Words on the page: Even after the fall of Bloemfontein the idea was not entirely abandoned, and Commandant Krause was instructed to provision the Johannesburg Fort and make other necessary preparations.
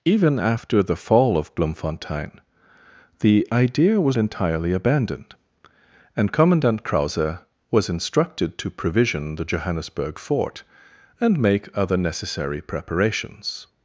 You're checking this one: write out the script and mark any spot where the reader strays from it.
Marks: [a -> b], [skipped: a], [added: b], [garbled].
Even after the fall of Bloemfontein the idea was [skipped: not] entirely abandoned, and Commandant Krause was instructed to provision the Johannesburg Fort and make other necessary preparations.